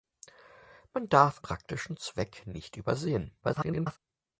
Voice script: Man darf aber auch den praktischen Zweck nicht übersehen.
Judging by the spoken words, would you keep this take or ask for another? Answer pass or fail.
fail